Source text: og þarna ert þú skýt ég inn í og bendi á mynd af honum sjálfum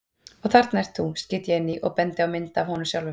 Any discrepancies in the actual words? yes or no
no